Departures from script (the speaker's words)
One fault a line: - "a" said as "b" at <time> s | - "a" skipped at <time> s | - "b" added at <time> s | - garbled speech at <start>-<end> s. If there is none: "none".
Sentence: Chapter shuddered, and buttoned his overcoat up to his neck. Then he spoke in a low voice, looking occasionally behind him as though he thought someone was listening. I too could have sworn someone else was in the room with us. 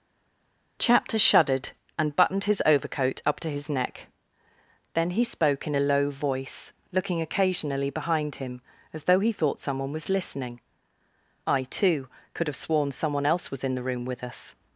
none